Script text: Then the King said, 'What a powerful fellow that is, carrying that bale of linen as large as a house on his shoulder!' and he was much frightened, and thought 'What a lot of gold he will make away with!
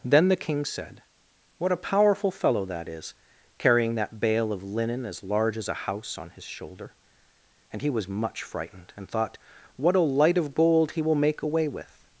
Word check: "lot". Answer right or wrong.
wrong